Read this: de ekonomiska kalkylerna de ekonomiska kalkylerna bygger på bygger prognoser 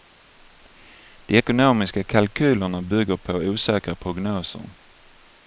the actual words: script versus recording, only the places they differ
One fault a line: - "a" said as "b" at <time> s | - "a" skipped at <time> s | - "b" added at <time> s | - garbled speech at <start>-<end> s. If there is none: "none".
- "de ekonomiska kalkylerna" skipped at 2.8 s
- "bygger" said as "osäkra" at 3.3 s